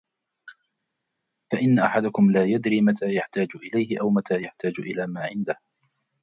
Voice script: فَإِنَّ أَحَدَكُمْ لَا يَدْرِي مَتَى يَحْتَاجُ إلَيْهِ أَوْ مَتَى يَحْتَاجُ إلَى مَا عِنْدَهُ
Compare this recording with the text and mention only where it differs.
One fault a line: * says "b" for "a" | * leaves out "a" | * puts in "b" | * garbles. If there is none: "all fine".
all fine